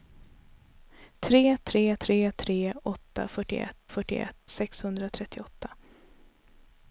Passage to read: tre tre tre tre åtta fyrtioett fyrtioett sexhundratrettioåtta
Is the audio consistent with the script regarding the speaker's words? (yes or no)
yes